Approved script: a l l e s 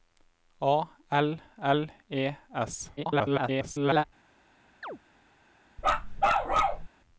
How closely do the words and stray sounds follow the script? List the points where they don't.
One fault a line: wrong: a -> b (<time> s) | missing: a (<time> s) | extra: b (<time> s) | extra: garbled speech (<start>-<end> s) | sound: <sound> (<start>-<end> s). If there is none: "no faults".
extra: garbled speech (3.0-4.0 s)
sound: chirp (4.8-5.0 s)
sound: bark (5.8-6.9 s)